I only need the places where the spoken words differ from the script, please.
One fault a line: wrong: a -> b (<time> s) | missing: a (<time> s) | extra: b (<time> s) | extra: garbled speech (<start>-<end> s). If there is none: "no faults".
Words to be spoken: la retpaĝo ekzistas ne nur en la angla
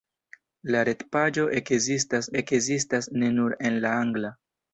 extra: ekzistas (2.4 s)